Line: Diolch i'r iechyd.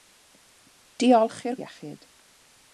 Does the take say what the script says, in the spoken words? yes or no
yes